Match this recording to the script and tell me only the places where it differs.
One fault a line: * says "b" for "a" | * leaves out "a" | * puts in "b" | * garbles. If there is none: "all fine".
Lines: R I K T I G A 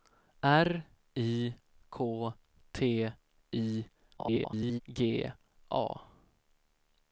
* garbles